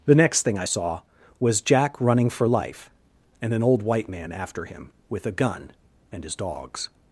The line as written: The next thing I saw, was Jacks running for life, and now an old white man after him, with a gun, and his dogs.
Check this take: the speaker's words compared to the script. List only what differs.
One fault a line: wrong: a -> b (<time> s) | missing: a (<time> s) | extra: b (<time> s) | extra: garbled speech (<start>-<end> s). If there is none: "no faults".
wrong: Jacks -> Jack (1.6 s)
missing: now (3.5 s)